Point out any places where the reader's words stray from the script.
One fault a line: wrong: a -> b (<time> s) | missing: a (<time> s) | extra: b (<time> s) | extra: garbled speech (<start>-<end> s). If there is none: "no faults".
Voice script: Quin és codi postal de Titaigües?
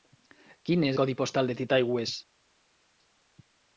no faults